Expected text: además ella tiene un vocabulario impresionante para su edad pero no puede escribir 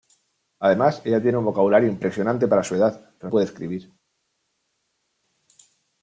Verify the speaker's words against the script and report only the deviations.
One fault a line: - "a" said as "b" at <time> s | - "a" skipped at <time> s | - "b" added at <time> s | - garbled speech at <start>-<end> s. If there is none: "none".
- "no" skipped at 3.3 s